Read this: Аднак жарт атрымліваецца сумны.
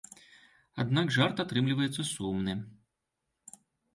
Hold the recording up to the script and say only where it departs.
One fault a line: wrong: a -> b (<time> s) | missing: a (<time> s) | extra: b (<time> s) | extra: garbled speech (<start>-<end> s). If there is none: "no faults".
no faults